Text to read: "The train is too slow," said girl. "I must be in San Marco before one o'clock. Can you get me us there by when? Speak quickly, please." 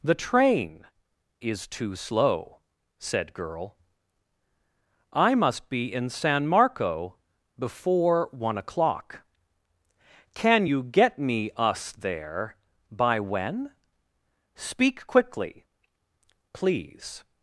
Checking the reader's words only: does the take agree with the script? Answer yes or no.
yes